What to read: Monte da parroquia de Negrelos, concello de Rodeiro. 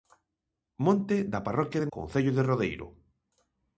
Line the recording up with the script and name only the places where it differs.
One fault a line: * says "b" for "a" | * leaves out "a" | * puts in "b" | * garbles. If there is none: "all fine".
* leaves out "Negrelos"